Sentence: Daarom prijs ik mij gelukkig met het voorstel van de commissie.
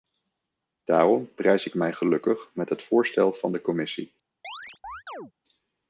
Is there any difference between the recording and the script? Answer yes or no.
no